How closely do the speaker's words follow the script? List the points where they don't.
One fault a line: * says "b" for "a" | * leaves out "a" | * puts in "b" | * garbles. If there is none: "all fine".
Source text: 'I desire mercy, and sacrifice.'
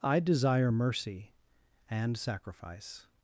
all fine